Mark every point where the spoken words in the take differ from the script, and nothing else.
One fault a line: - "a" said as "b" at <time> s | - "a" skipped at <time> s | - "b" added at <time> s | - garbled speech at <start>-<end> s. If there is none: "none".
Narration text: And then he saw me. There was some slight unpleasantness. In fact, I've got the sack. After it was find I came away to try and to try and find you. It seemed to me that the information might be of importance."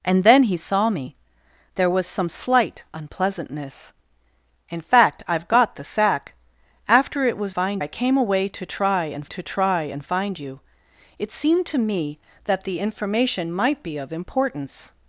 none